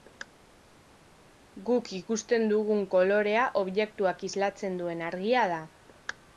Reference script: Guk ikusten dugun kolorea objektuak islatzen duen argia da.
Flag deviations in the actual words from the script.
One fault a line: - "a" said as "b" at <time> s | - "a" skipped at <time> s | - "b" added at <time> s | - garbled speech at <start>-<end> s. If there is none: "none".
none